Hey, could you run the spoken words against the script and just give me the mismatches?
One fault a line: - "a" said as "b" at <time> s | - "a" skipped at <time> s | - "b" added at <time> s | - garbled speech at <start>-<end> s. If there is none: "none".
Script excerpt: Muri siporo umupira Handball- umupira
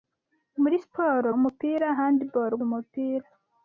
none